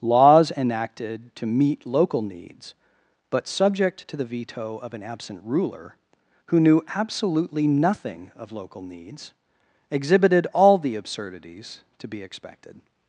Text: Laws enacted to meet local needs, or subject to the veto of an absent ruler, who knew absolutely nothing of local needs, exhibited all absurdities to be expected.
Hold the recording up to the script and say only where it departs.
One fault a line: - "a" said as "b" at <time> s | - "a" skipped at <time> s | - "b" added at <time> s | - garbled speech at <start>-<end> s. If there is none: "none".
- "or" said as "but" at 3.3 s
- "the" added at 10.8 s